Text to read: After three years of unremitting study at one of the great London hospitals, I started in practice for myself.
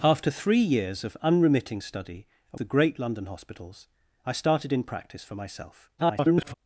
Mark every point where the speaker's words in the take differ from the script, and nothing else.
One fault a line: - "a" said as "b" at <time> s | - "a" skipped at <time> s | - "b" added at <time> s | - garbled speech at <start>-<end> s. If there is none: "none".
- "one of" skipped at 2.6 s
- garbled speech at 6.0-6.5 s